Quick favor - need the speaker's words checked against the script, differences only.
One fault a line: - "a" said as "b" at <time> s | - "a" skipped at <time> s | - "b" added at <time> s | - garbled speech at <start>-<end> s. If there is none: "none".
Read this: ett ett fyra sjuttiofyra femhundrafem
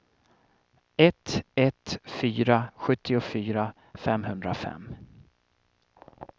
none